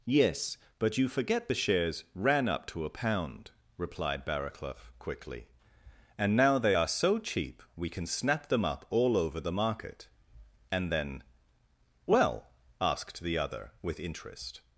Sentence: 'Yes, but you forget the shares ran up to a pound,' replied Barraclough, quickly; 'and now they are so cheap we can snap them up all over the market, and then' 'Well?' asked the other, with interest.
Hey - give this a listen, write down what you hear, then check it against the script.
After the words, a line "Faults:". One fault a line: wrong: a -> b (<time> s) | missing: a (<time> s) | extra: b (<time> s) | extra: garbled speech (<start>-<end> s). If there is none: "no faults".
'Yes, but you forget the shares ran up to a pound,' replied Barraclough, quickly; 'and now they are so cheap we can snap them up all over the market, and then' 'Well?' asked the other, with interest.
Faults:
no faults